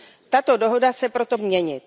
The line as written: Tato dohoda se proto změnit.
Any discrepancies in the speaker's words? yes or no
no